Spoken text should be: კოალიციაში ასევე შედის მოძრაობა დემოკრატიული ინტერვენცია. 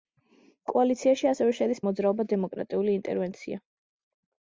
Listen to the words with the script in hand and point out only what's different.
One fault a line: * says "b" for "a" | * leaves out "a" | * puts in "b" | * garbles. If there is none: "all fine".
all fine